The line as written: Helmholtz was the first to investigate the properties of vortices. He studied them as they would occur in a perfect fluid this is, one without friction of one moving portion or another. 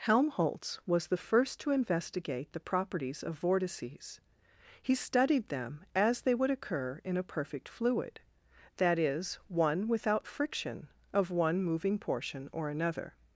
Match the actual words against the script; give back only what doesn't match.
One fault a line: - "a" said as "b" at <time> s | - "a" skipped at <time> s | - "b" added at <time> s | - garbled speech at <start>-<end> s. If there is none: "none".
- "this" said as "that" at 8.8 s